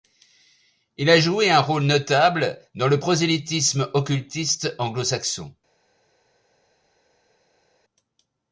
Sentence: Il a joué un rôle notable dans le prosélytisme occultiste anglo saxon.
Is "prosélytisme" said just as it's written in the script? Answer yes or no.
yes